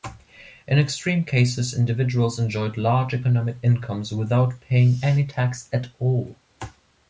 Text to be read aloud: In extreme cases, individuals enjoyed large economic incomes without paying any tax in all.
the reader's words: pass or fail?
fail